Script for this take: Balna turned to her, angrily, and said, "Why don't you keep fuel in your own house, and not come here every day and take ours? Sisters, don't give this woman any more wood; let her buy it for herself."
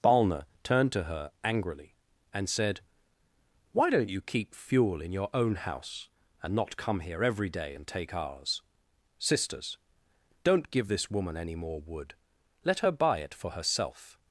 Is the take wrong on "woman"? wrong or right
right